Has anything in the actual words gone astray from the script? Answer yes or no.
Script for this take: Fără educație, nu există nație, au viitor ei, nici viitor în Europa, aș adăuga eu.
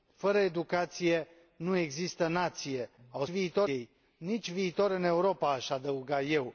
no